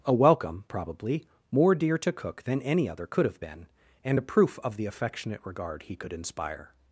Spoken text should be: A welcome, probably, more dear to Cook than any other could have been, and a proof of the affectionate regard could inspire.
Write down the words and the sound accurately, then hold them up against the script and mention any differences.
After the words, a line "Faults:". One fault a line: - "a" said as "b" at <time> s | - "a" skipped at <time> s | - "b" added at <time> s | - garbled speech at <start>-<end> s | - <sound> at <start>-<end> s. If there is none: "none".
A welcome, probably, more dear to Cook than any other could have been, and a proof of the affectionate regard he could inspire.
Faults:
- "he" added at 5.8 s